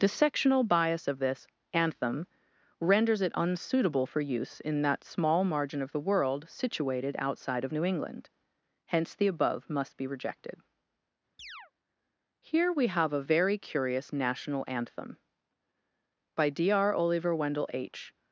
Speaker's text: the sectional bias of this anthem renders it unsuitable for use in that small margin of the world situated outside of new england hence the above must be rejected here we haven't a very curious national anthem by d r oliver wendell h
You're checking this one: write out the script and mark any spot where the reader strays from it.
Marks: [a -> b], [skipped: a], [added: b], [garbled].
the sectional bias of this anthem renders it unsuitable for use in that small margin of the world situated outside of new england hence the above must be rejected here we [haven't -> have] a very curious national anthem by d r oliver wendell h